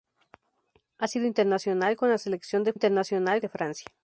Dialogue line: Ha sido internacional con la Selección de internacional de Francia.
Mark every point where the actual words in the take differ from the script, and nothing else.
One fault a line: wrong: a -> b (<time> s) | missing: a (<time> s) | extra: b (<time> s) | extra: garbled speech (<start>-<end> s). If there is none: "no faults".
no faults